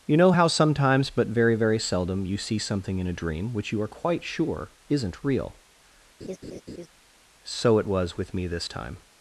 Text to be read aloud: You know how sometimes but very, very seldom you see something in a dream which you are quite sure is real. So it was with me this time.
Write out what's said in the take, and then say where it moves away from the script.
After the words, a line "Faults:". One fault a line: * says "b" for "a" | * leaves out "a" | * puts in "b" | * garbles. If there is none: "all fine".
You know how sometimes but very, very seldom you see something in a dream which you are quite sure isn't real. So it was with me this time.
Faults:
* says "isn't" for "is"